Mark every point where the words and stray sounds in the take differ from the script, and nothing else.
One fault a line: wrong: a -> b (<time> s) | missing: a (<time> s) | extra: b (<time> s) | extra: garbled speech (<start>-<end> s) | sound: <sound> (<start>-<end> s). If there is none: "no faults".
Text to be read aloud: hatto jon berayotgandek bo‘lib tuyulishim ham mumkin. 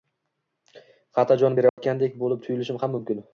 sound: dropout (1.7-1.8 s)